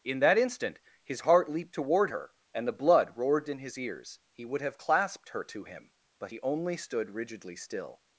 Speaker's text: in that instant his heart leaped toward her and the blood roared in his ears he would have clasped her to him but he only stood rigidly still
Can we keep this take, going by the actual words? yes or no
yes